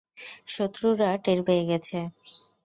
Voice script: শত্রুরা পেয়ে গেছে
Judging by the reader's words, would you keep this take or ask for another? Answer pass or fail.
fail